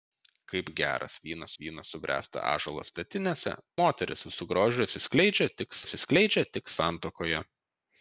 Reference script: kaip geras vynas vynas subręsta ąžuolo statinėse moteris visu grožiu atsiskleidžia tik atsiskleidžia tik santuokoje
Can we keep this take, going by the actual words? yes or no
yes